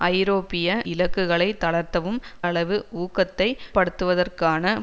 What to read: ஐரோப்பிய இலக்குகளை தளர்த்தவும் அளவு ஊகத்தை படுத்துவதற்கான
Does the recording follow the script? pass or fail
pass